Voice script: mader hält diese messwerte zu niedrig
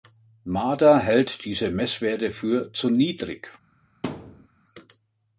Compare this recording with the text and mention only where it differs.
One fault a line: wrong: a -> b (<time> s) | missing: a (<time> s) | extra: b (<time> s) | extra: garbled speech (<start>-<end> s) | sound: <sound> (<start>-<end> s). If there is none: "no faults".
extra: für (2.3 s)
sound: thud (4.0-4.5 s)